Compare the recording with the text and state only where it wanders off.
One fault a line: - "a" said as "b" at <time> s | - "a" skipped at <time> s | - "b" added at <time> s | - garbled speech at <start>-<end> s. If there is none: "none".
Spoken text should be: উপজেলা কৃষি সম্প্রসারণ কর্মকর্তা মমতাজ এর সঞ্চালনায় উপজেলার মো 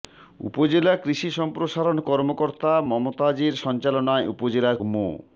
none